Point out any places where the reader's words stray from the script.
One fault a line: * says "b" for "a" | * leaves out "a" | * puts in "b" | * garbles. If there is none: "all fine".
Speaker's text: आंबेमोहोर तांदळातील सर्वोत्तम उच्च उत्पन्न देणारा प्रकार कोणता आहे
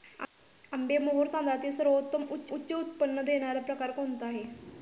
* puts in "उच्च"